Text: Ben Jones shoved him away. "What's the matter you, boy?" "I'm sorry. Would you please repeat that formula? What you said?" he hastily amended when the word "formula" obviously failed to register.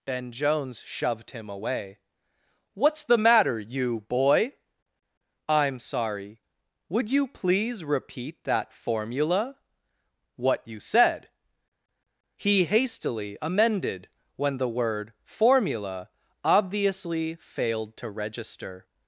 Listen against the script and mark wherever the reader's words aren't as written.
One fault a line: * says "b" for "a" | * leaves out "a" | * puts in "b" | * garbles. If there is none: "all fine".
all fine